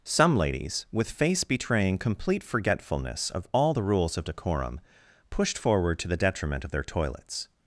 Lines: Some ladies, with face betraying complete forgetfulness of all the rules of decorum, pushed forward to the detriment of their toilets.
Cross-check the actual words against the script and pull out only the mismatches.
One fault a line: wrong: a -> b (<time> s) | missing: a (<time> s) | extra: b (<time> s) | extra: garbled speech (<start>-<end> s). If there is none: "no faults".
no faults